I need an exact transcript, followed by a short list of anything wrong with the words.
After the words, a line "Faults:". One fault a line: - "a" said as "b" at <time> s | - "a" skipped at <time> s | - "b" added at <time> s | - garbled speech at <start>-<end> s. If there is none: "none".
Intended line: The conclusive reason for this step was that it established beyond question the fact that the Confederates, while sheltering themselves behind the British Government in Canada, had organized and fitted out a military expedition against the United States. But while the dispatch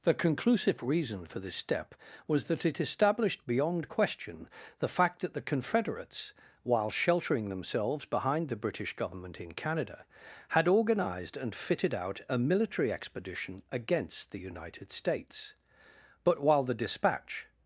The conclusive reason for this step was that it established beyond question the fact that the Confederates, while sheltering themselves behind the British Government in Canada, had organized and fitted out a military expedition against the United States. But while the dispatch
Faults:
none